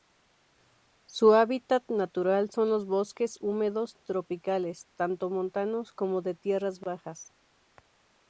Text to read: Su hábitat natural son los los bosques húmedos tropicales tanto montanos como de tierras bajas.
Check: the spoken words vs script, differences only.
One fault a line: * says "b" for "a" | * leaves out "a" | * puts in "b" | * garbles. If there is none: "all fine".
* leaves out "los"